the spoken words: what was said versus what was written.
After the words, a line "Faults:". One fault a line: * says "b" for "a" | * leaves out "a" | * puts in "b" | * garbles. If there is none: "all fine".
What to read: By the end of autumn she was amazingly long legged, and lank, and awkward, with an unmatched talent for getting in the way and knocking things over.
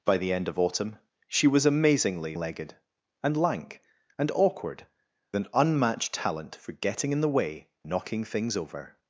By the end of autumn she was amazingly legged, and lank, and awkward, an unmatched talent for getting in the way knocking things over.
Faults:
* leaves out "long"
* leaves out "with"
* leaves out "and"